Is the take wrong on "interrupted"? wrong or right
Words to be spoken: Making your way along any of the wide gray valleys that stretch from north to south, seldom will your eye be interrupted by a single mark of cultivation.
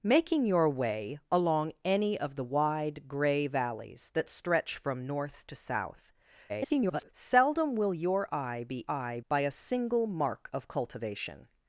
wrong